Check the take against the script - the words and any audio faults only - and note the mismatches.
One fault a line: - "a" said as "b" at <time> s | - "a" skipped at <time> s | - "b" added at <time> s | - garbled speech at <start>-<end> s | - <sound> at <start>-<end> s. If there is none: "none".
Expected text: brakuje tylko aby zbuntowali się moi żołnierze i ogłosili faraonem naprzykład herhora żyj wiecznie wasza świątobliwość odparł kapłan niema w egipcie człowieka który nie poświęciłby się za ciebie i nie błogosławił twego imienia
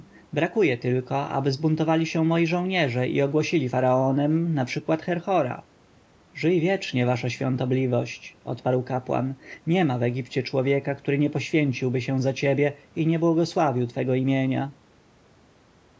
none